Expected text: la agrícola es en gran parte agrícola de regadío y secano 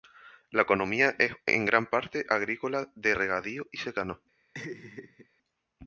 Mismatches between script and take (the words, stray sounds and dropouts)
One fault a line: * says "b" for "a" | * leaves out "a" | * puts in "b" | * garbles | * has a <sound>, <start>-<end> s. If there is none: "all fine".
* says "economía" for "agrícola"
* has a laugh, 4.5-5.3 s